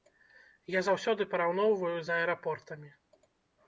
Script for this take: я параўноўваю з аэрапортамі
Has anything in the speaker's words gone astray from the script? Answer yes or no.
yes